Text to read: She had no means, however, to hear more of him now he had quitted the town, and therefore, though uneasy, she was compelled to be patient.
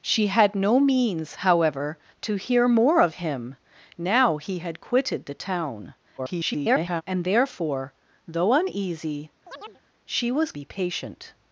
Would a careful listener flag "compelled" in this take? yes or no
yes